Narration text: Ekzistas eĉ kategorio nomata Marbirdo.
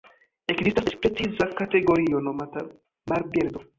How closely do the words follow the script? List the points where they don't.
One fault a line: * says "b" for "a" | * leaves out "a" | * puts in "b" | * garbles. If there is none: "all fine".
* puts in "preciza"